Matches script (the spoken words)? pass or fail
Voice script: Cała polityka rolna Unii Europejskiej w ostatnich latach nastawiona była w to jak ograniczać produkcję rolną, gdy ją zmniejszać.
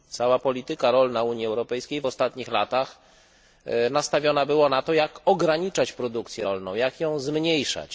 fail